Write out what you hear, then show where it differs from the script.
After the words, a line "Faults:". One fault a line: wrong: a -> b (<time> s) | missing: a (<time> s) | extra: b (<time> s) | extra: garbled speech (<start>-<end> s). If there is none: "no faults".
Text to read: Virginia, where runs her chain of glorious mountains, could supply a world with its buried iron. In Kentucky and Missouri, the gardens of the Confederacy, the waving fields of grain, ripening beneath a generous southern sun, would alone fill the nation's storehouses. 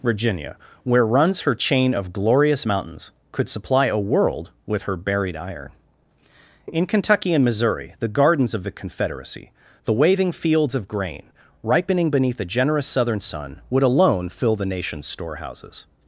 Virginia, where runs her chain of glorious mountains, could supply a world with her buried iron. In Kentucky and Missouri, the gardens of the Confederacy, the waving fields of grain, ripening beneath a generous southern sun, would alone fill the nation's storehouses.
Faults:
wrong: its -> her (4.8 s)